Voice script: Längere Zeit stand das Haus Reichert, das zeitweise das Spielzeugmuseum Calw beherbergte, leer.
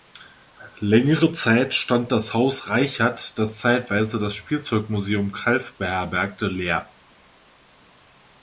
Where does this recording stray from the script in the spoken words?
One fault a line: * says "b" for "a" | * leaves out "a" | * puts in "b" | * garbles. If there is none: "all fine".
all fine